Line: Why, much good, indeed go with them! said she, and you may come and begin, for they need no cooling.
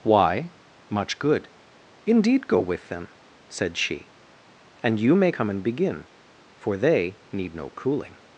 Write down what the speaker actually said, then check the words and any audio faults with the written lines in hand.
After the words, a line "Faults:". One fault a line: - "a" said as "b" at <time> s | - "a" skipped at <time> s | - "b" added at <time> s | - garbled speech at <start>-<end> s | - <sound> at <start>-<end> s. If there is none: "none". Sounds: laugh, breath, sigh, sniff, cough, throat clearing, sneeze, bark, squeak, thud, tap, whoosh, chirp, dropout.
Why, much good, indeed go with them! said she, and you may come and begin, for they need no cooling.
Faults:
none